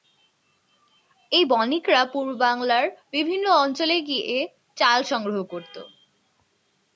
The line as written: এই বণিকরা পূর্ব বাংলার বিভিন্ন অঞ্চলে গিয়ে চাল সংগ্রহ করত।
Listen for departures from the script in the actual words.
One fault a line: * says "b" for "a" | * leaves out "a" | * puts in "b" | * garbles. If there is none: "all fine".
all fine